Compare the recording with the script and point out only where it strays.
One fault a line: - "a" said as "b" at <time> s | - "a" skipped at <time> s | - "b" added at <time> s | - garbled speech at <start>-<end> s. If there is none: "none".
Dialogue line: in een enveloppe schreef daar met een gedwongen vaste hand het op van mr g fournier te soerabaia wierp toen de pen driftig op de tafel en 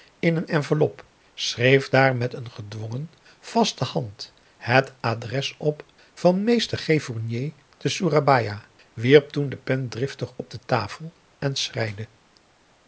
- "adres" added at 5.0 s